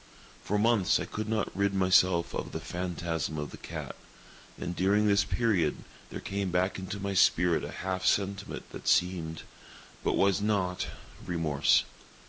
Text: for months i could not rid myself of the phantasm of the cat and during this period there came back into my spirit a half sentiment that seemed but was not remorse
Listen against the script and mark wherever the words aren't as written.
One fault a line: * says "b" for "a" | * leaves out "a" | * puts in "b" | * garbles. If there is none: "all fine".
all fine